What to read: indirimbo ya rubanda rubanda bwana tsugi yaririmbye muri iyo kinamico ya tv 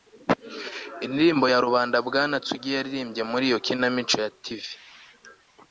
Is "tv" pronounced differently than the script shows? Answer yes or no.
no